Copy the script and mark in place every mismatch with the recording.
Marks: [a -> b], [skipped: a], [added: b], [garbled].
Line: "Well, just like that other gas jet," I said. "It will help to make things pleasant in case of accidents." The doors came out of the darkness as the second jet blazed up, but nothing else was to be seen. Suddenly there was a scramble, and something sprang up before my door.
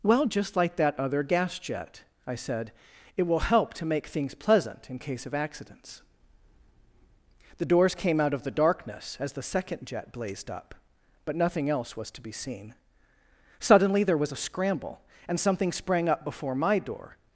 "Well, just like that other gas jet," I said. "It will help to make things pleasant in case of accidents." The doors came out of the darkness as the second jet blazed up, but nothing else was to be seen. Suddenly there was a scramble, and something sprang up before my door.